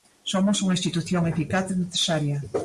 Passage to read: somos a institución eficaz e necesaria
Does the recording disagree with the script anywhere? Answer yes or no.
yes